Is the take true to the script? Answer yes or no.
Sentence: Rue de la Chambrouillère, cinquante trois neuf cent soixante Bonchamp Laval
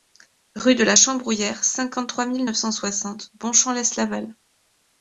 no